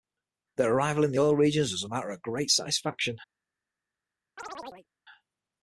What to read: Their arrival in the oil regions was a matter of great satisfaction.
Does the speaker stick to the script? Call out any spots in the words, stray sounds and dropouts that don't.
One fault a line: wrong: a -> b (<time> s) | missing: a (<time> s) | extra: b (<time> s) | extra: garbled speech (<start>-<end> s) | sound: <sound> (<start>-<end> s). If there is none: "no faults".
sound: chirp (4.4-4.9 s)